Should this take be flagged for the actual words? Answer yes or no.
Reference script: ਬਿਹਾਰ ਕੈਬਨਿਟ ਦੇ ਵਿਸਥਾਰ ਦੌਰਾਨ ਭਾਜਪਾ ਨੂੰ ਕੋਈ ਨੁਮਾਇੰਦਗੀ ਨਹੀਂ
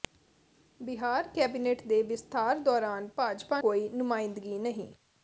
yes